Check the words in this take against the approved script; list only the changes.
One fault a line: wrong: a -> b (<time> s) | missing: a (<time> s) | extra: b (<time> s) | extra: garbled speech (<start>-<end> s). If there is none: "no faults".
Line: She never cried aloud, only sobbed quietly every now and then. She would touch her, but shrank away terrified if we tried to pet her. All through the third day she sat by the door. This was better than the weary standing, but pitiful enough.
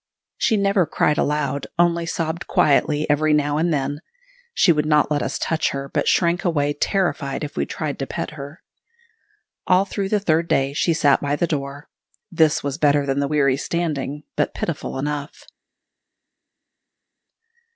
extra: not let us (4.8 s)